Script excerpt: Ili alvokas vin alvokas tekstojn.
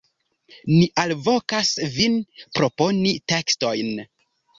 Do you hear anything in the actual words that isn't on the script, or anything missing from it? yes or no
yes